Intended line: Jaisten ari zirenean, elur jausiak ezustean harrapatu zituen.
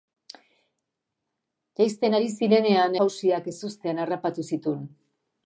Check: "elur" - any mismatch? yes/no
yes